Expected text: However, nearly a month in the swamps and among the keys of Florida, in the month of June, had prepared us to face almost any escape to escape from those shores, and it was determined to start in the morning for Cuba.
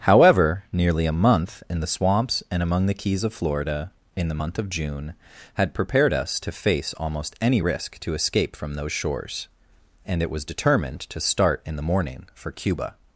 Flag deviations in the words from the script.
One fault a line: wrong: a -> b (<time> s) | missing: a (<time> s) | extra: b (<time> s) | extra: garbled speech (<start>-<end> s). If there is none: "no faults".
wrong: escape -> risk (7.6 s)